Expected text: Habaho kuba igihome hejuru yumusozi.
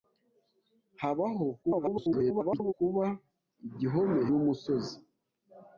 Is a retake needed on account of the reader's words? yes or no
yes